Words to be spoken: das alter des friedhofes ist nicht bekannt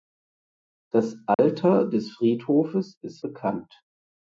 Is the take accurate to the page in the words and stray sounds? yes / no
no